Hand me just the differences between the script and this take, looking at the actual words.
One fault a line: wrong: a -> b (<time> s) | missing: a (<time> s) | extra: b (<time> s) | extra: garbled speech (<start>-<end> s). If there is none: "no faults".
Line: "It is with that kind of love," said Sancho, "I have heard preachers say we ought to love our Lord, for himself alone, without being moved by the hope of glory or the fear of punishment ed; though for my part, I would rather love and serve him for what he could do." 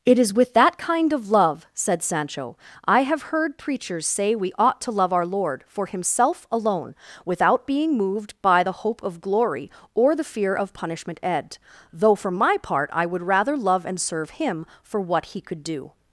no faults